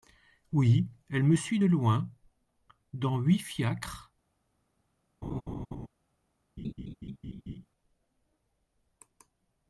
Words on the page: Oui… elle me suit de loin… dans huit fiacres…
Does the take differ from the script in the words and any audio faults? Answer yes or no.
yes